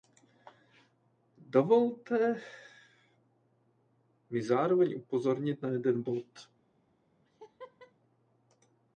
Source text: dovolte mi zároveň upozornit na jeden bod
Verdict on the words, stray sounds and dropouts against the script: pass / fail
fail